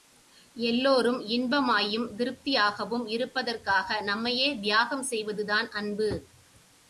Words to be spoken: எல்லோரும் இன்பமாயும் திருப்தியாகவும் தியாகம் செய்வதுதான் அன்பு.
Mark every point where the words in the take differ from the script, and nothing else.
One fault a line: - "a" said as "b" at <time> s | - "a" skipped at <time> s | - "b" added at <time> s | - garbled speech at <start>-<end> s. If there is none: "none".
- "இருப்பதற்காக நம்மையே" added at 3.1 s